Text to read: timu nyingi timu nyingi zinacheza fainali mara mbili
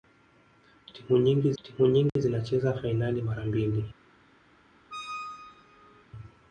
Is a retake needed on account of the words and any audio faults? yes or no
yes